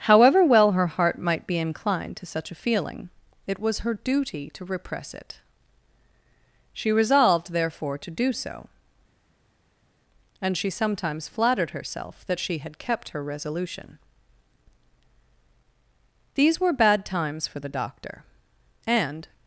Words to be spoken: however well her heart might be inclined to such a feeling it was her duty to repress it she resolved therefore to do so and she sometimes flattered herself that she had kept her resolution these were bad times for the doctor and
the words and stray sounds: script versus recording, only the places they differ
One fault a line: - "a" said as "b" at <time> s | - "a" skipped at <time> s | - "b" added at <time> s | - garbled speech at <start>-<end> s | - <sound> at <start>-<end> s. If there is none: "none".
none